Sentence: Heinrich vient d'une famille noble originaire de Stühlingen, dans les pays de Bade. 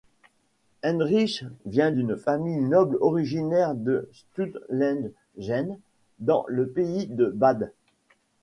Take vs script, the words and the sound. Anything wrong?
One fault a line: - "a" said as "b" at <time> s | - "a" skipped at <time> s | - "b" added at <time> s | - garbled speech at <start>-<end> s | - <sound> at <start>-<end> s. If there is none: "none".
- "les" said as "le" at 6.5 s